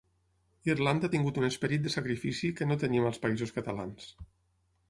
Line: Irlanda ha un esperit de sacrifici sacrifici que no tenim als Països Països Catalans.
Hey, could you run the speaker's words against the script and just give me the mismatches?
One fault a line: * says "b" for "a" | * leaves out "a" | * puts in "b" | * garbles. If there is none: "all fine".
* puts in "tingut"
* leaves out "sacrifici"
* leaves out "Països"